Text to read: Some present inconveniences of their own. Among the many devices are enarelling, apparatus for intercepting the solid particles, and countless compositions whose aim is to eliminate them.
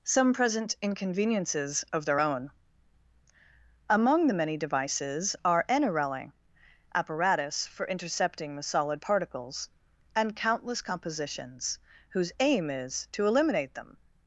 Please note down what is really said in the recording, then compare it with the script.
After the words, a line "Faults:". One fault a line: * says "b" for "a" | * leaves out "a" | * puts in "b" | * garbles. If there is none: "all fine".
Some present inconveniences of their own. Among the many devices are enarelling, apparatus for intercepting the solid particles, and countless compositions whose aim is to eliminate them.
Faults:
all fine